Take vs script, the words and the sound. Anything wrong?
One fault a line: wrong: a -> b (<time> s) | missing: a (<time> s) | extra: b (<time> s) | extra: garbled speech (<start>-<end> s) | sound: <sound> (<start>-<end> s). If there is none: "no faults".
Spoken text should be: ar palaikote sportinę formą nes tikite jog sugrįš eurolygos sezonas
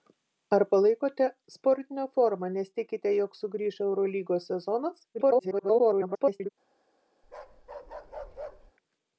extra: garbled speech (5.1-6.5 s)
sound: bark (7.2-8.7 s)